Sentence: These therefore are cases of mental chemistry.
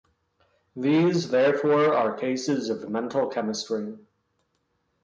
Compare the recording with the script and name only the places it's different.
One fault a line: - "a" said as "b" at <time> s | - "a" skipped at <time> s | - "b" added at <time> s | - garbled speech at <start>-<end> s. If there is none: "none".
none